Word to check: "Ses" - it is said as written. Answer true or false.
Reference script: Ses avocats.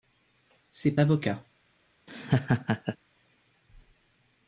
true